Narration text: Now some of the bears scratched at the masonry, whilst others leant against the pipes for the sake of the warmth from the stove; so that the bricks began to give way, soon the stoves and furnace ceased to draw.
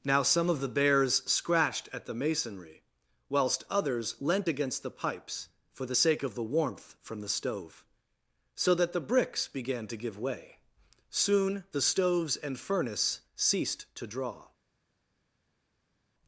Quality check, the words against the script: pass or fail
pass